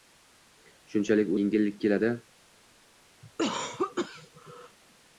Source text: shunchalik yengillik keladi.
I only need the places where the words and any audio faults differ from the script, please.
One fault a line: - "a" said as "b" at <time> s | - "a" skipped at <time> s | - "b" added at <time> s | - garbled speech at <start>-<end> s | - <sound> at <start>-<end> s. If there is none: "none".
- cough at 3.2-4.8 s